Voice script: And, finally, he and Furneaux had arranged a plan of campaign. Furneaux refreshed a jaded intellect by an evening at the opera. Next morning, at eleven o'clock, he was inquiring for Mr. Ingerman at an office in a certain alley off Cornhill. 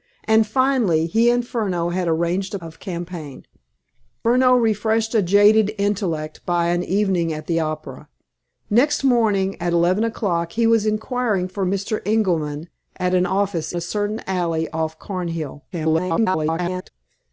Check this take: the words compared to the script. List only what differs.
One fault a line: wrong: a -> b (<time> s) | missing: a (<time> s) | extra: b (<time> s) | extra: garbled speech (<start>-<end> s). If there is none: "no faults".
missing: plan (2.6 s)
missing: in (13.7 s)
extra: garbled speech (15.7-16.9 s)